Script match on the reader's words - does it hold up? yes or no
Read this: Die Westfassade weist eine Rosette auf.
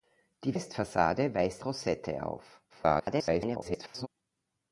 no